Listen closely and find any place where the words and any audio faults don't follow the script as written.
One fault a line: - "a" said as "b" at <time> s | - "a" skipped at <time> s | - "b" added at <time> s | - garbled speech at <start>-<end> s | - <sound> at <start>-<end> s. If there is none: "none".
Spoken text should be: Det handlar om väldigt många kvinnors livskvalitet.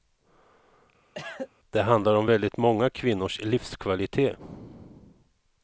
- cough at 1.2-1.5 s